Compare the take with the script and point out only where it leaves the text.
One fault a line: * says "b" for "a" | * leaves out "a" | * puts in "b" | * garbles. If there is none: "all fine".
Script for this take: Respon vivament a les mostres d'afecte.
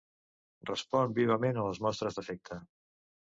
all fine